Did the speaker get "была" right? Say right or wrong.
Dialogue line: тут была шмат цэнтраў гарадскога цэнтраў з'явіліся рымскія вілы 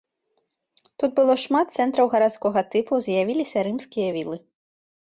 wrong